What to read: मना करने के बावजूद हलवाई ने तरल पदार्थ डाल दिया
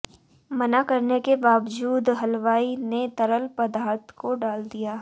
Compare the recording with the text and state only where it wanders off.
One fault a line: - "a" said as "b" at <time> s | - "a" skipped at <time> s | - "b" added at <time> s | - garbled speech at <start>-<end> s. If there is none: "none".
- "को" added at 4.2 s